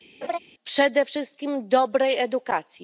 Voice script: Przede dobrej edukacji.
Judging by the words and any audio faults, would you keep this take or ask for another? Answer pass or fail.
fail